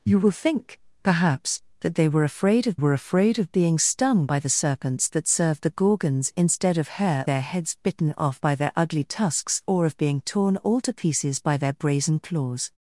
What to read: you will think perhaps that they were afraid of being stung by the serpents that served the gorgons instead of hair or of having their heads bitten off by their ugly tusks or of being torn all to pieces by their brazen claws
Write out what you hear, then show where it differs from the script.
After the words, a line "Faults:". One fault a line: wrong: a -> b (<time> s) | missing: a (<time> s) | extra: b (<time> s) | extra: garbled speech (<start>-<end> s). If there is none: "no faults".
you will think perhaps that they were afraid of were afraid of being stung by the serpents that served the gorgons instead of hair their heads bitten off by their ugly tusks or of being torn all to pieces by their brazen claws
Faults:
extra: were afraid of (2.7 s)
missing: or of having (7.3 s)